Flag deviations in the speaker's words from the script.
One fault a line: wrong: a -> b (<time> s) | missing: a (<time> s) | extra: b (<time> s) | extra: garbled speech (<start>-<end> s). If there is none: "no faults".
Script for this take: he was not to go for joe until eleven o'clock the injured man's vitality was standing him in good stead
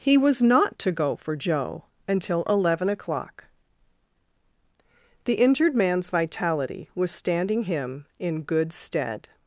no faults